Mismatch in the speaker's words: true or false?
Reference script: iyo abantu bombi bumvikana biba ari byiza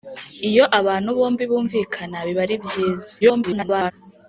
true